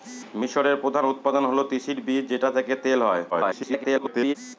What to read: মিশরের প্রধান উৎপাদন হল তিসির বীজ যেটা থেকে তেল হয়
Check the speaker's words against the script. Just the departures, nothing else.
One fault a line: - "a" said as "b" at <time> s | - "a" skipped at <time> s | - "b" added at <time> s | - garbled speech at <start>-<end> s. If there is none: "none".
- garbled speech at 3.3-4.4 s